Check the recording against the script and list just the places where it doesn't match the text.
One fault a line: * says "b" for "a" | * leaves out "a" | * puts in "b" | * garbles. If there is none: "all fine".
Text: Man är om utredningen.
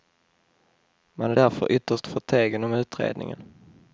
* puts in "därför ytterst förtegen"